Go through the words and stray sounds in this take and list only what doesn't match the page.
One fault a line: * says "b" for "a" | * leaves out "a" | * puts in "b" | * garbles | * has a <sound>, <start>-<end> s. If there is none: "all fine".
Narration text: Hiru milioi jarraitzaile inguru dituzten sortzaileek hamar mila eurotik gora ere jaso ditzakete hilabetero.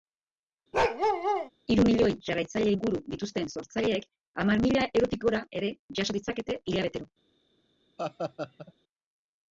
* has a bark, 0.7-1.5 s
* has a laugh, 8.0-8.7 s